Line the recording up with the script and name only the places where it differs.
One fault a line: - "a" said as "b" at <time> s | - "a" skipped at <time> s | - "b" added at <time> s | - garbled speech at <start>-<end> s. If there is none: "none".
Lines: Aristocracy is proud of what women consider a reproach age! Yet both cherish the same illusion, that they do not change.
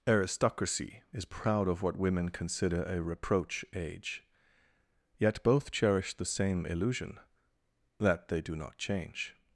none